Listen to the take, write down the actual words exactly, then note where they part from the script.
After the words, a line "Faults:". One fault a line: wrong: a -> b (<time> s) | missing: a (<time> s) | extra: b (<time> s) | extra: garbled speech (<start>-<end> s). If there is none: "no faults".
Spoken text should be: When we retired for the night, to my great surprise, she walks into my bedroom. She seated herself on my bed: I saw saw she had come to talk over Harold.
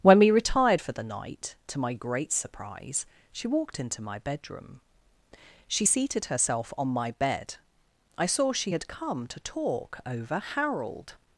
When we retired for the night, to my great surprise, she walked into my bedroom. She seated herself on my bed: I saw she had come to talk over Harold.
Faults:
wrong: walks -> walked (3.5 s)
missing: saw (8.5 s)